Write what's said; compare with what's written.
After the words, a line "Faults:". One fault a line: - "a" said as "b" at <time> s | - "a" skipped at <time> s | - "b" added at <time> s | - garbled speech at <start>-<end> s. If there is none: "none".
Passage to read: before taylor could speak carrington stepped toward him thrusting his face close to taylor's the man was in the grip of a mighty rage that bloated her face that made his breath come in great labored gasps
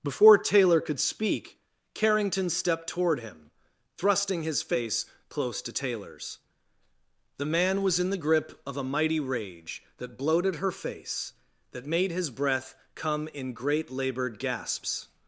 before taylor could speak carrington stepped toward him thrusting his face close to taylor's the man was in the grip of a mighty rage that bloated her face that made his breath come in great labored gasps
Faults:
none